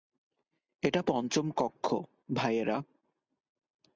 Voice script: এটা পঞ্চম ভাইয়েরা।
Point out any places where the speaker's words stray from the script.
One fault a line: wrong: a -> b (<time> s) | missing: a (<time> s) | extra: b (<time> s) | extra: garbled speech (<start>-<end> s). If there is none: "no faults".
extra: কক্ষ (1.6 s)